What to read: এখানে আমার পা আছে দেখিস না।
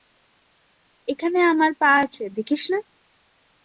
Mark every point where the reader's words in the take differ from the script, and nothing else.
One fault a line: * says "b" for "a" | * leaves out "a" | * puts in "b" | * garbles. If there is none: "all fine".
all fine